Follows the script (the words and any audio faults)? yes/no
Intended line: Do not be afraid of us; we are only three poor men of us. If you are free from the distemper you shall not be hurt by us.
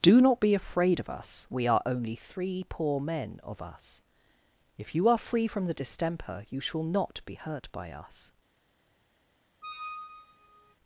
no